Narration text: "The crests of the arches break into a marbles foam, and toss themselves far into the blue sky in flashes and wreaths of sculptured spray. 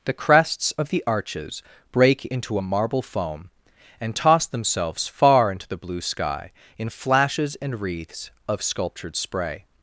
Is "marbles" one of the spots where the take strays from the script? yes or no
yes